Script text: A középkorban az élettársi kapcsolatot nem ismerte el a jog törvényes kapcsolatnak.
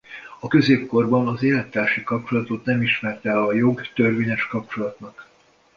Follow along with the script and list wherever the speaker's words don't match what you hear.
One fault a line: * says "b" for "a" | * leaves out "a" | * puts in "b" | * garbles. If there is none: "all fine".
all fine